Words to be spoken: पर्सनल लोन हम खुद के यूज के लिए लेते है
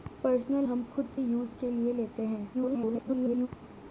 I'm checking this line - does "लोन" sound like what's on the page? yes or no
no